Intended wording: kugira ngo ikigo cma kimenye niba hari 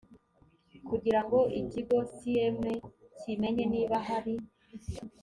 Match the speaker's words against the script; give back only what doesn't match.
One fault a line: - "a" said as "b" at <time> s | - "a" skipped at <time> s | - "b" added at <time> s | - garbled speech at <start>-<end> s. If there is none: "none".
none